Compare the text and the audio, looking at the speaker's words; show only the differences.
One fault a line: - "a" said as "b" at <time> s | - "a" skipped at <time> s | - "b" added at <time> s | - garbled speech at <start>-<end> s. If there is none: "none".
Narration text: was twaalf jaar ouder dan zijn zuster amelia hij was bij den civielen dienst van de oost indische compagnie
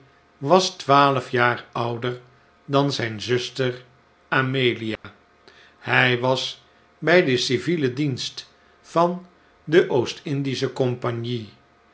none